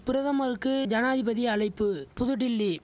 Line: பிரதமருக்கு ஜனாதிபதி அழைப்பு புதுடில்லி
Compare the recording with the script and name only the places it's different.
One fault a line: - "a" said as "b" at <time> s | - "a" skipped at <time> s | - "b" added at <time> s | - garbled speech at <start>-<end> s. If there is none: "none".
none